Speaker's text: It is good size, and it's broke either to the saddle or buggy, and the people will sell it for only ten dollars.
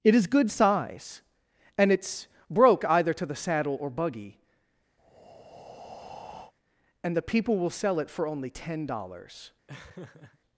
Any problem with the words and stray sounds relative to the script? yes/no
yes